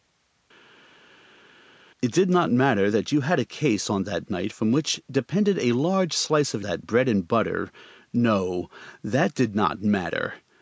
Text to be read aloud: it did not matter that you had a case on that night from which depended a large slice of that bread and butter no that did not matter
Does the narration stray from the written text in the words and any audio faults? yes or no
no